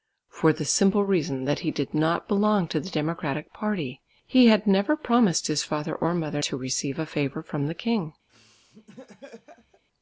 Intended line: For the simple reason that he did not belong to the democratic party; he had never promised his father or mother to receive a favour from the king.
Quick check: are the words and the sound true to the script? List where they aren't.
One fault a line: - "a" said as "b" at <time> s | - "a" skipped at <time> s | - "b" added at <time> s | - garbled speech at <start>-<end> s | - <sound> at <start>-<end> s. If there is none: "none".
- laugh at 8.3-9.8 s